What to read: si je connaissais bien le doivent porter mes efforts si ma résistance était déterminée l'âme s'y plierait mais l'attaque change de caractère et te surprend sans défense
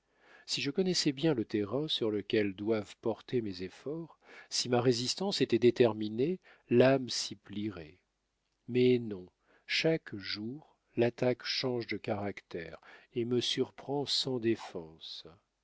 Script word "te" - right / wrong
wrong